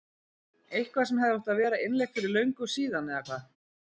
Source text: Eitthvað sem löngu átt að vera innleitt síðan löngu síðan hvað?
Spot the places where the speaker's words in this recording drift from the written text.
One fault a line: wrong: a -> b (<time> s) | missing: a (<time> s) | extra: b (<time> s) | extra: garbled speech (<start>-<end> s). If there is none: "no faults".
wrong: löngu -> hefði (1.2 s)
wrong: síðan -> fyrir (2.2 s)
extra: eða (3.1 s)